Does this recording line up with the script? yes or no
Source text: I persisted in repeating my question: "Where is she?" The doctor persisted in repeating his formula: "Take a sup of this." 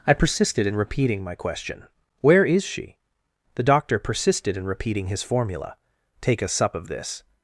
yes